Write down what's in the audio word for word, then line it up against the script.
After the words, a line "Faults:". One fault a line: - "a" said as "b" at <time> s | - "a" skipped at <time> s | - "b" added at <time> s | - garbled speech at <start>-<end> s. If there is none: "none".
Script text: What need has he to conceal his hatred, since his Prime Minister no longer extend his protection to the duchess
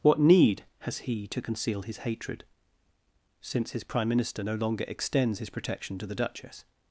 What need has he to conceal his hatred, since his Prime Minister no longer extends his protection to the duchess
Faults:
- "extend" said as "extends" at 4.9 s